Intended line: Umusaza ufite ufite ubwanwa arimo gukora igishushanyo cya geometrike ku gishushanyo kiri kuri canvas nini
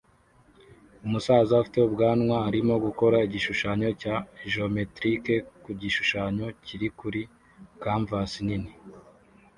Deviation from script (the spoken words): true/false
true